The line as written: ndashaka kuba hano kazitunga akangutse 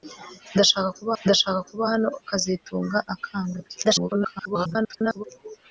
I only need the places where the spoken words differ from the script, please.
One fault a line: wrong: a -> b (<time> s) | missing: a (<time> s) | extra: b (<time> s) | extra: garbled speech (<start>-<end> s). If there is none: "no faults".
extra: ndashaka kuba (1.2 s)
extra: garbled speech (3.8-5.2 s)